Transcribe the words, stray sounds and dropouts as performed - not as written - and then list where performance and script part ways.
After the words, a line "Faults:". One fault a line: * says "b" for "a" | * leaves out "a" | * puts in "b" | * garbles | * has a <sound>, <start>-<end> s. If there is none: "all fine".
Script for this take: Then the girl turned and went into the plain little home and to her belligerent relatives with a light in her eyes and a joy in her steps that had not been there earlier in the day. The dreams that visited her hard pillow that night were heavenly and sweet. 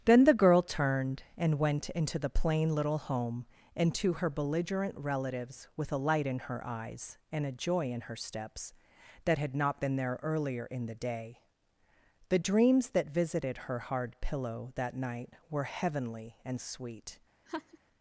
Then the girl turned and went into the plain little home and to her belligerent relatives with a light in her eyes and a joy in her steps that had not been there earlier in the day. The dreams that visited her hard pillow that night were heavenly and sweet.
Faults:
* has a laugh, 17.5-17.8 s